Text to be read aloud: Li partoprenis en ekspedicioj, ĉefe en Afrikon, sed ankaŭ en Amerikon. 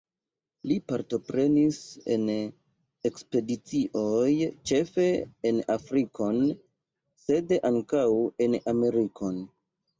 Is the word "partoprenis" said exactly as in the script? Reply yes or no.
yes